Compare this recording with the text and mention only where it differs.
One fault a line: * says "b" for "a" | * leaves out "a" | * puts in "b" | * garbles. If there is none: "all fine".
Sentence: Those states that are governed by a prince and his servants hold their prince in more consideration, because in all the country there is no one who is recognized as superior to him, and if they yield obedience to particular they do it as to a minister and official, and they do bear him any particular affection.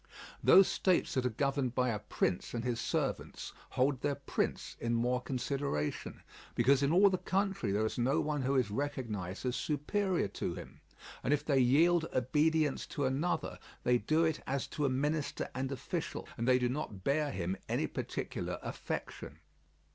* says "another" for "particular"
* puts in "not"